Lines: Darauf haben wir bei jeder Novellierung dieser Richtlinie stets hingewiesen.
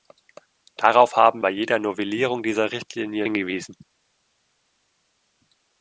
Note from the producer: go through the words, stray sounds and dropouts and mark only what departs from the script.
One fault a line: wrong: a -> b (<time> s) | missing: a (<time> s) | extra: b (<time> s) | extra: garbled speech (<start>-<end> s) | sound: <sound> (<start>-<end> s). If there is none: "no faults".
missing: wir (1.4 s)
missing: stets (3.3 s)